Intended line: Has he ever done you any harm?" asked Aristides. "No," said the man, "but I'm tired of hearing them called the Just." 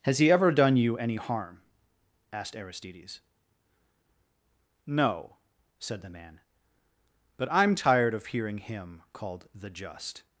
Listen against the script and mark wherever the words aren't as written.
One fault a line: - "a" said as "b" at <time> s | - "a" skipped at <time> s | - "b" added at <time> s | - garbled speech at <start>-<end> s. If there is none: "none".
- "them" said as "him" at 8.6 s